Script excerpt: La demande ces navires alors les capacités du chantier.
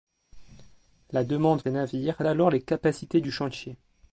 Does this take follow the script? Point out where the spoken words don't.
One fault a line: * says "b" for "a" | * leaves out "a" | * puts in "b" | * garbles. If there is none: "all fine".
all fine